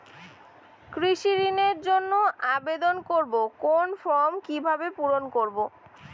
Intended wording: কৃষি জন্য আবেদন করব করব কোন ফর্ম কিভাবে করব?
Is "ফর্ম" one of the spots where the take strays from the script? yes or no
no